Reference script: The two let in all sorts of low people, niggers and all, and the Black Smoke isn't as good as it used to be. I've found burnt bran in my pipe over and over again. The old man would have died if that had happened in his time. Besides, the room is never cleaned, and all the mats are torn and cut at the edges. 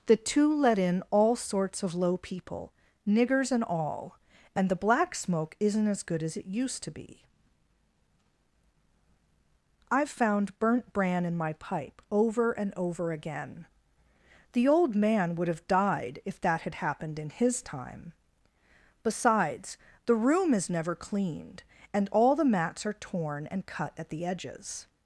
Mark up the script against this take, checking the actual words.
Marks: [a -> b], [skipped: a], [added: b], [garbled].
The two let in all sorts of low people, niggers and all, and the Black Smoke isn't as good as it used to be. I've found burnt bran in my pipe over and over again. The old man would have died if that had happened in his time. Besides, the room is never cleaned, and all the mats are torn and cut at the edges.